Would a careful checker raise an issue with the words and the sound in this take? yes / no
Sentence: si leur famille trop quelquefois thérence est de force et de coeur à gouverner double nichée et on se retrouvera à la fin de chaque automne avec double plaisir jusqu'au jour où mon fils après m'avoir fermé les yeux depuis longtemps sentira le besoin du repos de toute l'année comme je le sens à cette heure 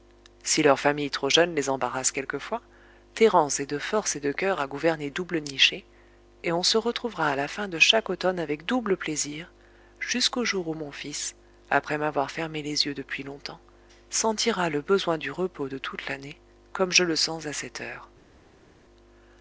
yes